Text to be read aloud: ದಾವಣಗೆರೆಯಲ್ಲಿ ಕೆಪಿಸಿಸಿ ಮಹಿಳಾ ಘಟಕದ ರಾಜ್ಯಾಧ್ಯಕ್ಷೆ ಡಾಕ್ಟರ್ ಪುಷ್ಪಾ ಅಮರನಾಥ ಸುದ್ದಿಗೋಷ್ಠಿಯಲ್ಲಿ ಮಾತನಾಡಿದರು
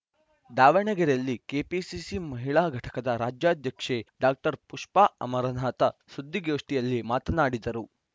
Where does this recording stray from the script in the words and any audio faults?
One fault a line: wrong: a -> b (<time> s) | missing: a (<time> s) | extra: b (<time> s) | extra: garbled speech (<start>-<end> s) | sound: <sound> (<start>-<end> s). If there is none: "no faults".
no faults